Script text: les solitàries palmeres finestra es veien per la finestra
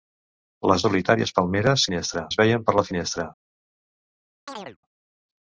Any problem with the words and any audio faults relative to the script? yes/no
yes